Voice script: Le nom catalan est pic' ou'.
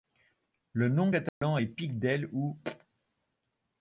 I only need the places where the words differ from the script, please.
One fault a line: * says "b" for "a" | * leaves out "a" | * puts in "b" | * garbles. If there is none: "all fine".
* puts in "del"